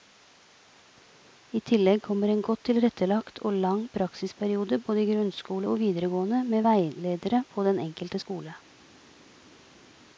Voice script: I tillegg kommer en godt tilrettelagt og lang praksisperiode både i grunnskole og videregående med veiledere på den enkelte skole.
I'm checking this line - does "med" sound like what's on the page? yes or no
yes